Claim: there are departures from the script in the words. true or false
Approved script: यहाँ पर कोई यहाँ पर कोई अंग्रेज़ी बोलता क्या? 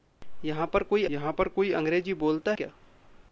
false